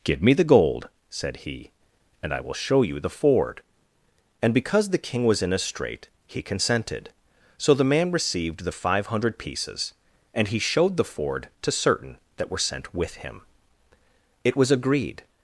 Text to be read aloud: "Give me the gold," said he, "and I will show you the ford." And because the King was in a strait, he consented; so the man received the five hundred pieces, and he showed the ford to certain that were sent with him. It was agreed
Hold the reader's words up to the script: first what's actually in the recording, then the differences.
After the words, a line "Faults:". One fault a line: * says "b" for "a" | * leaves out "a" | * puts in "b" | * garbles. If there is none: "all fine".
"Give me the gold," said he, "and I will show you the ford." And because the King was in a strait, he consented; so the man received the five hundred pieces, and he showed the ford to certain that were sent with him. It was agreed
Faults:
all fine